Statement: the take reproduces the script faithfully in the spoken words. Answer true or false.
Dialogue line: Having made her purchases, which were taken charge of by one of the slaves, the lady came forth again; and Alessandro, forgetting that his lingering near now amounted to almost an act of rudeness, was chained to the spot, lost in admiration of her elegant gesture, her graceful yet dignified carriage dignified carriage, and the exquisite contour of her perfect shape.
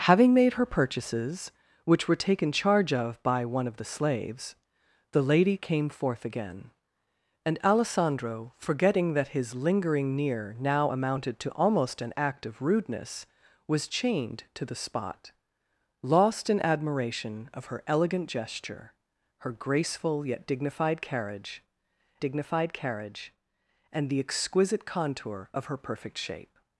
true